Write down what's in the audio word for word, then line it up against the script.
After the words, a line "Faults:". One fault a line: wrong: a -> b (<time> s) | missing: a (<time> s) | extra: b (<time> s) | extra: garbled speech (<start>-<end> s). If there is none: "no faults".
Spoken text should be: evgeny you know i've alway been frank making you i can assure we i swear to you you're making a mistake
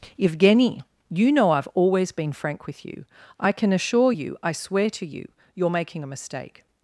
evgeny you know i've always been frank with you i can assure you i swear to you you're making a mistake
Faults:
wrong: alway -> always (1.8 s)
wrong: making -> with (2.6 s)
wrong: we -> you (4.1 s)